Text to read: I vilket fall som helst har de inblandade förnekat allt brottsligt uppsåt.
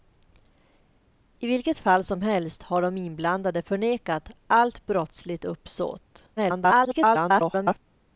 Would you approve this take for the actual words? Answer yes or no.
no